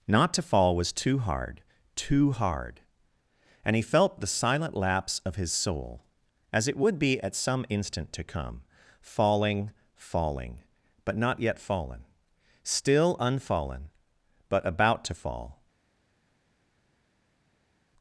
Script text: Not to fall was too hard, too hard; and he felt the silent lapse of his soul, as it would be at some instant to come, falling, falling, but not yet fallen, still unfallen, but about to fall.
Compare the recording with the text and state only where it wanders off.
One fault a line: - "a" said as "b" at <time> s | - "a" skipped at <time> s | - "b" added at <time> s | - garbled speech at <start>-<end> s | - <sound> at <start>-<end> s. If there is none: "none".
none